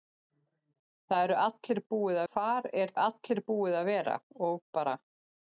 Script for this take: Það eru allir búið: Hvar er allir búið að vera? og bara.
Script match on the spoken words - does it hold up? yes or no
yes